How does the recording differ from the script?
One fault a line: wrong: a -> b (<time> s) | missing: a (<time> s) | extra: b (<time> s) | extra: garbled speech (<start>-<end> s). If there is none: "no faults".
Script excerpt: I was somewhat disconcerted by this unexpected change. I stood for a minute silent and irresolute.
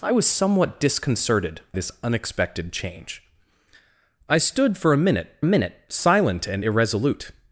missing: by (1.6 s)
extra: minute (5.4 s)